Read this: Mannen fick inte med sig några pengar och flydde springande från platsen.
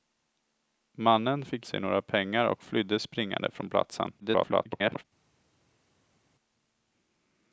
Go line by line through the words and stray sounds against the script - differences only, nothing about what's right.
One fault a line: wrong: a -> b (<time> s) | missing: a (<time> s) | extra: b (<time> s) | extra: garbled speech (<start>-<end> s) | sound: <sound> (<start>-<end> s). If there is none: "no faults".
missing: inte med (1.7 s)
extra: garbled speech (4.2-5.0 s)